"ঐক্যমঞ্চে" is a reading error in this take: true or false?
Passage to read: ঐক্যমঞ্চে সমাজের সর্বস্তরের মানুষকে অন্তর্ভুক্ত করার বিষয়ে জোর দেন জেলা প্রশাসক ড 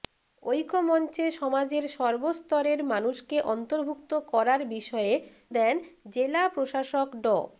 false